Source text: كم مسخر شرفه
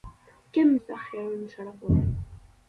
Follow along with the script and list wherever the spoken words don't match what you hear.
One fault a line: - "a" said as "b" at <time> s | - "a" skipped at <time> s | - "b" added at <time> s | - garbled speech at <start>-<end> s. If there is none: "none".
none